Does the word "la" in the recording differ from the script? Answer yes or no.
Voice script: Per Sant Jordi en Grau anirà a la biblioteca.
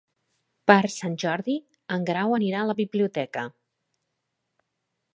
no